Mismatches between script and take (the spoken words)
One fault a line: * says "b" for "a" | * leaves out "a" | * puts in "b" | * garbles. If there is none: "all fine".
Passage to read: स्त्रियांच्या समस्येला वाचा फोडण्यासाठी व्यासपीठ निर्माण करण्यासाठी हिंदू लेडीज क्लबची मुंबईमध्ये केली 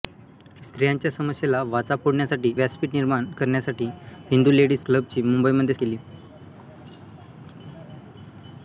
all fine